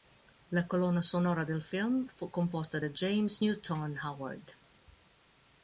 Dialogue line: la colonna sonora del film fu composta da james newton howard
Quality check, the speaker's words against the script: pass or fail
pass